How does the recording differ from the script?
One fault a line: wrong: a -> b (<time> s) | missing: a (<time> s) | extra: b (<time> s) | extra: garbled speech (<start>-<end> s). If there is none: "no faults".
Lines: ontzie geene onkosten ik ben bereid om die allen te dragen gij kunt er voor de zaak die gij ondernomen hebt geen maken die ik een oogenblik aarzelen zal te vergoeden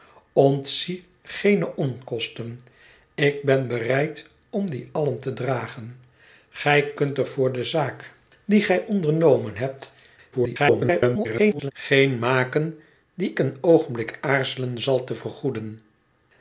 extra: garbled speech (10.3-11.7 s)
missing: ik (13.3 s)